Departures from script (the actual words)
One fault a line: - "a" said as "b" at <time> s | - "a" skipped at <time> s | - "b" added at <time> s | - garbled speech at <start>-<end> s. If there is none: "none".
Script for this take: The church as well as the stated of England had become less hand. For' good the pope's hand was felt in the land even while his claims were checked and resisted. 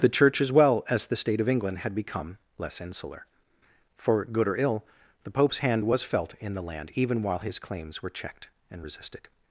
- "stated" said as "state" at 1.1 s
- "hand" said as "insular" at 2.8 s
- "or ill" added at 4.5 s